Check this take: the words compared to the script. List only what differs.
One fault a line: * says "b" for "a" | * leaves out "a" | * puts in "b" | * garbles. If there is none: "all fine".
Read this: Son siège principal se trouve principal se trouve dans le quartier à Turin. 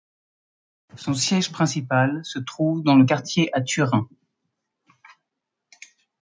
* leaves out "principal se trouve"